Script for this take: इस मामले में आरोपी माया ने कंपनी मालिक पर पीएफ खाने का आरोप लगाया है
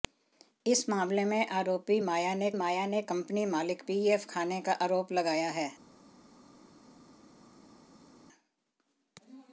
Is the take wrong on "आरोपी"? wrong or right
right